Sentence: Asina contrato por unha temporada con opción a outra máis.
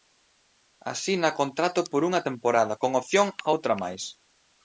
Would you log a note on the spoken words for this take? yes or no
no